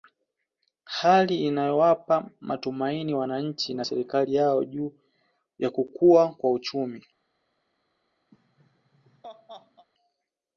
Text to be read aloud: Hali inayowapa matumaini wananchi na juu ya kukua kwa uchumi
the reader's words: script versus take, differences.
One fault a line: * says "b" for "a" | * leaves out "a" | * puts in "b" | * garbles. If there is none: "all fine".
* puts in "serikali yao"